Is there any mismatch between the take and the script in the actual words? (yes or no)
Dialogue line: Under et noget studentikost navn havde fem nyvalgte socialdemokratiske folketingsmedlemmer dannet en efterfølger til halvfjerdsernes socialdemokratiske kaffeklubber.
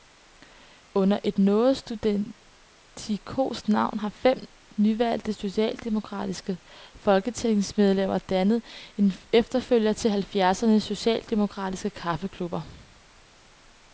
yes